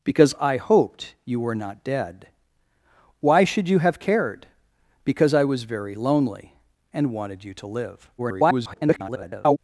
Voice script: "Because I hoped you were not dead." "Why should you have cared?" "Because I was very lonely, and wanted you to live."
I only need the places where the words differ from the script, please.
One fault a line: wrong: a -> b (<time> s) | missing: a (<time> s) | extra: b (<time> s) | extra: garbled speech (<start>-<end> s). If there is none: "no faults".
extra: garbled speech (8.2-9.6 s)